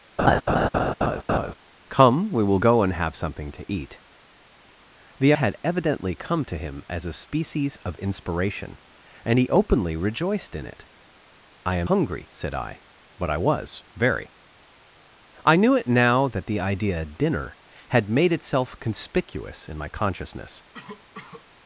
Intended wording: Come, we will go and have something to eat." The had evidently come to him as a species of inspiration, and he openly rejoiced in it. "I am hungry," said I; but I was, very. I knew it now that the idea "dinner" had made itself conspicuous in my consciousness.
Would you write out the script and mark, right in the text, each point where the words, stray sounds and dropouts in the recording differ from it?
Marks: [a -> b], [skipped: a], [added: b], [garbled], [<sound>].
[laugh] Come, we will go and have something to eat." The had evidently come to him as a species of inspiration, and he openly rejoiced in it. "I am hungry," said I; but I was, very. I knew it now that the idea "dinner" had made itself conspicuous in my consciousness. [cough]